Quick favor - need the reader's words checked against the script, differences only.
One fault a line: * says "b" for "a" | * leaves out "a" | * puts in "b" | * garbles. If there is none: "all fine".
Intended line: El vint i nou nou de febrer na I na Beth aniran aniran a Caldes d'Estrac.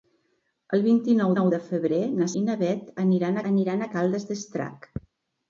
all fine